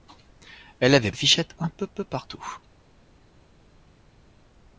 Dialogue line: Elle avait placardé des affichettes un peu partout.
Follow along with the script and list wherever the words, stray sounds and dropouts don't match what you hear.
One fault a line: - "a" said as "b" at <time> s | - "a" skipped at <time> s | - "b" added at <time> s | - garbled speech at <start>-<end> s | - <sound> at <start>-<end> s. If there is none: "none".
- "placardé des" skipped at 1.1 s
- "peu" added at 1.9 s